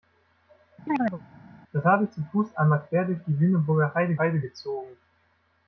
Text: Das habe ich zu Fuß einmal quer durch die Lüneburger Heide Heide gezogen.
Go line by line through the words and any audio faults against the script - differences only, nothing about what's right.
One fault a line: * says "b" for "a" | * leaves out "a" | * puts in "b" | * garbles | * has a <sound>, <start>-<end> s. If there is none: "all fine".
* has a chirp, 0.9-1.2 s